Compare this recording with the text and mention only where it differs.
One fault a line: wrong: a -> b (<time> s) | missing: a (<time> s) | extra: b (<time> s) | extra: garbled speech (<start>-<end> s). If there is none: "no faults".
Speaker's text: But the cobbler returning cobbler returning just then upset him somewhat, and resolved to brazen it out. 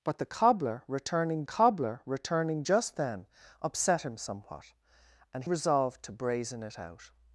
no faults